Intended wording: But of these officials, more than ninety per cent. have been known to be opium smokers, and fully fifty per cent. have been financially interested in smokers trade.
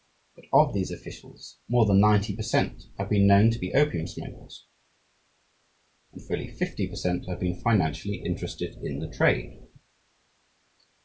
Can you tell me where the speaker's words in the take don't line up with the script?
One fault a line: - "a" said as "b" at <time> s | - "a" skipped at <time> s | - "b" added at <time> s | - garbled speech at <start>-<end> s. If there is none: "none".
- "smokers" said as "the" at 9.0 s